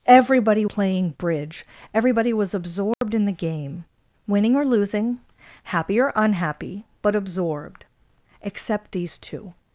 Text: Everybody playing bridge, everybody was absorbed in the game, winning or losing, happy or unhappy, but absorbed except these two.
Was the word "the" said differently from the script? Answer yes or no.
no